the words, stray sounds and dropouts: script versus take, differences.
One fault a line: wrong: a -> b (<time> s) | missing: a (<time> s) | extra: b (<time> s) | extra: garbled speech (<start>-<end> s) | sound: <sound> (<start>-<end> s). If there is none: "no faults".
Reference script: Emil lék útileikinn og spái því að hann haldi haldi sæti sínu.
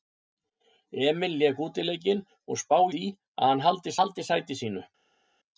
no faults